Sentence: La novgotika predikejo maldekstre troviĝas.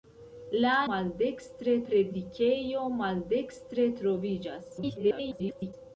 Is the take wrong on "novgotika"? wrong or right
wrong